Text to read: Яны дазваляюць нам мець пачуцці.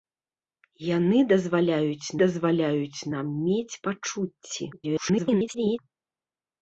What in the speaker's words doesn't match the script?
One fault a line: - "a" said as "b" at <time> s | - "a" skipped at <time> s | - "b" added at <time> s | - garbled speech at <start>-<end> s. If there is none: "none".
- "дазваляюць" added at 2.2 s
- garbled speech at 4.7-5.8 s